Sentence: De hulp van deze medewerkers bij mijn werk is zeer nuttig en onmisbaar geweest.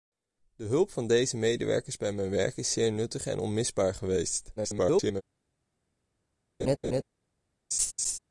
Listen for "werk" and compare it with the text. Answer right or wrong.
right